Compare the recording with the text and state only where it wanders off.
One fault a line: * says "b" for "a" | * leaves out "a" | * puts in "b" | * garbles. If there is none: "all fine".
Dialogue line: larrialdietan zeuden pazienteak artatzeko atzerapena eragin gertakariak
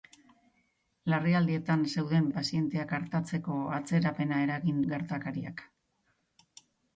all fine